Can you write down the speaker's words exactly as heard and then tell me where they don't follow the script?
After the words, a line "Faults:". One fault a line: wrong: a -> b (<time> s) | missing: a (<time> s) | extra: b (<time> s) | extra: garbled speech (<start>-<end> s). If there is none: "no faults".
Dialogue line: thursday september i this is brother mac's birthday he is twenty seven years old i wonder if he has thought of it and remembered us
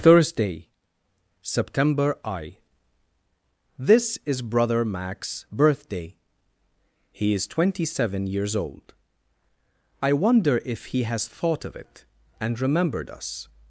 thursday september i this is brother mac's birthday he is twenty seven years old i wonder if he has thought of it and remembered us
Faults:
no faults